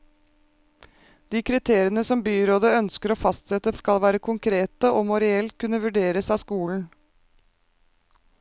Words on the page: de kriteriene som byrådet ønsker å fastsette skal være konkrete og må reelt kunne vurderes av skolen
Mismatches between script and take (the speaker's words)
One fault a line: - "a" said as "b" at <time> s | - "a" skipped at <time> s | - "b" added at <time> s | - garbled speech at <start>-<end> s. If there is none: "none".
none